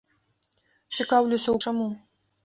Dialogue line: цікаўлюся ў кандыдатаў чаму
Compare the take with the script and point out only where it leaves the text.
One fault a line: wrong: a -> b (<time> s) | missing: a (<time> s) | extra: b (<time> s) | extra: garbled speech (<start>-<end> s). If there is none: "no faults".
missing: кандыдатаў (1.6 s)